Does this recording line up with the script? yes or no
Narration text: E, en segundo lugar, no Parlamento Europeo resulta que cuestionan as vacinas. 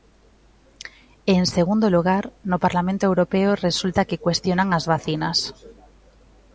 yes